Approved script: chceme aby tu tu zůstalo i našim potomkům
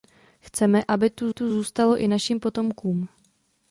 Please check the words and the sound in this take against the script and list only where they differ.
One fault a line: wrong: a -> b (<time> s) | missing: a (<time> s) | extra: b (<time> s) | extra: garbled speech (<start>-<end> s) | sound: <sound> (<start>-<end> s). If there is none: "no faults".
no faults